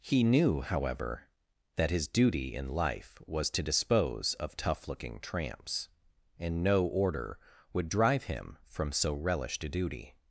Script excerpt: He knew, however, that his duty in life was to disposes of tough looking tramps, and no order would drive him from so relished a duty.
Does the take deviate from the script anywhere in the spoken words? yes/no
yes